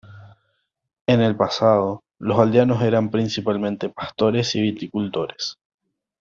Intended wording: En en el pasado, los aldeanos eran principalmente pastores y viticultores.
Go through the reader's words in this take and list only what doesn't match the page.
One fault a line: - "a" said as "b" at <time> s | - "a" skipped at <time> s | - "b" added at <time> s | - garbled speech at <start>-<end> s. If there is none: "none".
- "en" skipped at 1.2 s